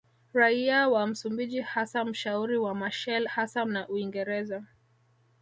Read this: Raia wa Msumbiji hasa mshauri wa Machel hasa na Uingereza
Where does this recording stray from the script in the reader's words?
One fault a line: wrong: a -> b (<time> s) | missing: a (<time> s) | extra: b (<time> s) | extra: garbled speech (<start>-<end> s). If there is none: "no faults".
no faults